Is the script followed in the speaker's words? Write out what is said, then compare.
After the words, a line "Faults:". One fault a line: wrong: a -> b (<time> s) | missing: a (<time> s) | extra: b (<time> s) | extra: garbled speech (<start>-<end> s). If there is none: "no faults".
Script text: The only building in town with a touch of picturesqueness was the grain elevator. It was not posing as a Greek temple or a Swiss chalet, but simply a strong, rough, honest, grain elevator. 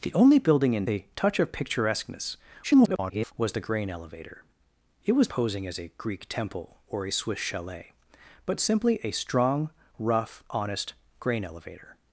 The only building in a touch of picturesqueness [garbled] was the grain elevator. It was posing as a Greek temple or a Swiss chalet, but simply a strong, rough, honest, grain elevator.
Faults:
missing: town with (0.9 s)
extra: garbled speech (2.6-3.3 s)
missing: not (5.3 s)